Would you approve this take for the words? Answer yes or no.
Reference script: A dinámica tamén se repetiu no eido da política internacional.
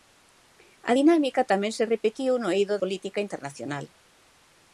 no